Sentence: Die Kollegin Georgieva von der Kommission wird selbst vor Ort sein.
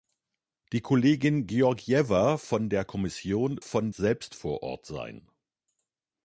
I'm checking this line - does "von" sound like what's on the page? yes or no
yes